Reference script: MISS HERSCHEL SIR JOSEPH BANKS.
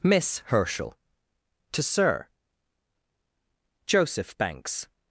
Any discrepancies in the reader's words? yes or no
yes